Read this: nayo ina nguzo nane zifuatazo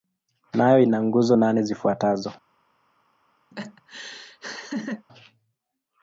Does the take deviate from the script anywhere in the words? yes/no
no